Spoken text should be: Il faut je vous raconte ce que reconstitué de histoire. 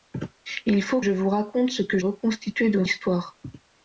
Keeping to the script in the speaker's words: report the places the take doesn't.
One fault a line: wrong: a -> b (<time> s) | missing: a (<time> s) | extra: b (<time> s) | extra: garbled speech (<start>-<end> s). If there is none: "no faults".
no faults